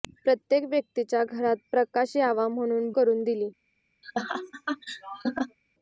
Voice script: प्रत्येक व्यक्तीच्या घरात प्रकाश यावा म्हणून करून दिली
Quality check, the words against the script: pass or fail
pass